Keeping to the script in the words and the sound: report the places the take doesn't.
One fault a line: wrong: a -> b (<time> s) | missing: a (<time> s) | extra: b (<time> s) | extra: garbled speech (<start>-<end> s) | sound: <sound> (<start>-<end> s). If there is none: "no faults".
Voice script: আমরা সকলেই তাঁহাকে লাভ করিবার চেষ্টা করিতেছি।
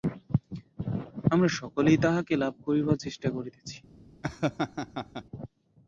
sound: laugh (4.2-5.2 s)